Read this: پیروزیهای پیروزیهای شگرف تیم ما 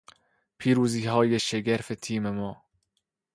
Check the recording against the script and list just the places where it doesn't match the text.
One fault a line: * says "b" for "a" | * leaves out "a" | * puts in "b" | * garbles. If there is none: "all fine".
* leaves out "پیروزیهای"